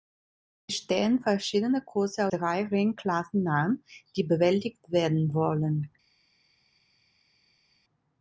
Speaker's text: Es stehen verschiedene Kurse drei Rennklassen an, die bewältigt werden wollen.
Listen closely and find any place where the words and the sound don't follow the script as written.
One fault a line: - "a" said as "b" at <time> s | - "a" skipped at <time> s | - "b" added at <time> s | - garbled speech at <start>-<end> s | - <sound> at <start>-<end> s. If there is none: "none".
none